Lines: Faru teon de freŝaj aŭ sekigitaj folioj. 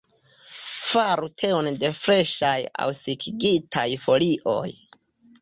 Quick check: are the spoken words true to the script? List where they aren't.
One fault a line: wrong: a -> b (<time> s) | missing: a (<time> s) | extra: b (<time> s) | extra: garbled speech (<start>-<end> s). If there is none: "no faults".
no faults